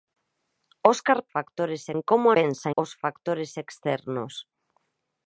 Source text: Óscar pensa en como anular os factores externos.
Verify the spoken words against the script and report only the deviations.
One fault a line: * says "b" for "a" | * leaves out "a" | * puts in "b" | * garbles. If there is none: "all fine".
* says "factores" for "pensa"
* says "pensa" for "anular"